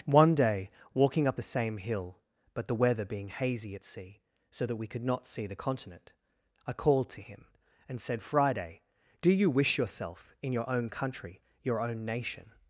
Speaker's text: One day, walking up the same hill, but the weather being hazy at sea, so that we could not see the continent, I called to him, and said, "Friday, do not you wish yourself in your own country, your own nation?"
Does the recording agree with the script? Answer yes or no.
no